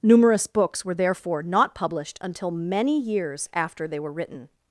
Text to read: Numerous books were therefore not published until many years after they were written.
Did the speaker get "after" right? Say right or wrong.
right